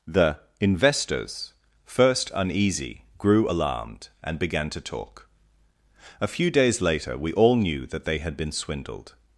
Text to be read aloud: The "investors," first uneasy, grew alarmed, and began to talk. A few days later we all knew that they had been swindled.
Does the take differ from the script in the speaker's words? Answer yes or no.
no